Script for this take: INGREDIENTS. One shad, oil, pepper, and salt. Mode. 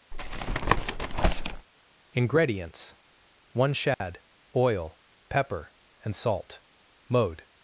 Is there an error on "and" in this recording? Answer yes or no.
no